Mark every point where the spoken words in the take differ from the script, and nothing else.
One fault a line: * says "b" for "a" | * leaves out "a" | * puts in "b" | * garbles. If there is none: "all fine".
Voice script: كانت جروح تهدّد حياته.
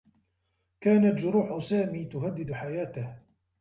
* puts in "سامي"